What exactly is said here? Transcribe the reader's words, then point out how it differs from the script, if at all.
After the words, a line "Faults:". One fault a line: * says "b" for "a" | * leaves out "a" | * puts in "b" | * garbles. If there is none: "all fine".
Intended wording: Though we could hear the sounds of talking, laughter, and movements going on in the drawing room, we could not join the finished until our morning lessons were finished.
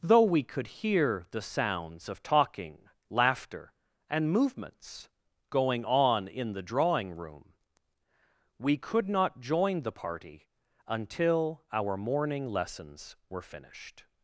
Though we could hear the sounds of talking, laughter, and movements going on in the drawing room, we could not join the party until our morning lessons were finished.
Faults:
* says "party" for "finished"